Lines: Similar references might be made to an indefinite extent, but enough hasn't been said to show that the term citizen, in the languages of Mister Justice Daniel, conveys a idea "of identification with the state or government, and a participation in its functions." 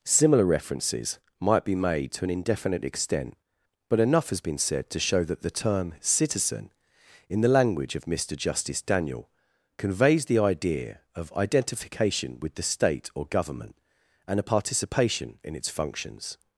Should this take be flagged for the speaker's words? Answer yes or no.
yes